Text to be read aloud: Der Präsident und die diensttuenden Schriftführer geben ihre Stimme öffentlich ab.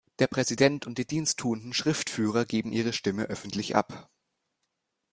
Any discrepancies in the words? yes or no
no